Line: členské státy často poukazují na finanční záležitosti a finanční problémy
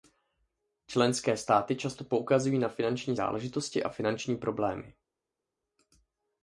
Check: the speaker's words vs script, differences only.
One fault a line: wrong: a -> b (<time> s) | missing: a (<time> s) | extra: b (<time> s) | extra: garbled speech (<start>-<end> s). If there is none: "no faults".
no faults